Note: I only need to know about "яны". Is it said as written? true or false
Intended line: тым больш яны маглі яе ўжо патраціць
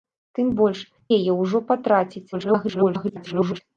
false